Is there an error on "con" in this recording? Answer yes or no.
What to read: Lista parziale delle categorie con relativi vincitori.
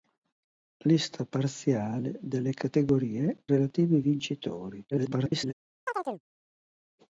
yes